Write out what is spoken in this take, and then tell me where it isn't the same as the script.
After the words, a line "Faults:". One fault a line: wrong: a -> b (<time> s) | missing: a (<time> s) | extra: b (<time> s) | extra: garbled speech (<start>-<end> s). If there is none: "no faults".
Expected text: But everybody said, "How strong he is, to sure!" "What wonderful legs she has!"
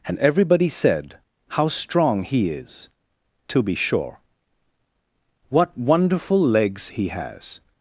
And everybody said, "How strong he is, to be sure!" "What wonderful legs he has!"
Faults:
wrong: But -> And (0.1 s)
extra: be (3.6 s)
wrong: she -> he (6.9 s)